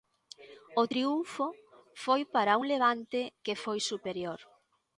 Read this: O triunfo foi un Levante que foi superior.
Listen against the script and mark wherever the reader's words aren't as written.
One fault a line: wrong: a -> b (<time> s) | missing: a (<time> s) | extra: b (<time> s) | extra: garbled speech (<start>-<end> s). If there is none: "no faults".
extra: para (2.3 s)